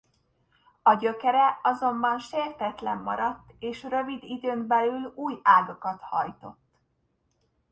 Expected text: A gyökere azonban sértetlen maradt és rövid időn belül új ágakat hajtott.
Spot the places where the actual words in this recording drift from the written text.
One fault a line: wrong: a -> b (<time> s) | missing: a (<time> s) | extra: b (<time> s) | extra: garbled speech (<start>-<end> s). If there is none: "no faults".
no faults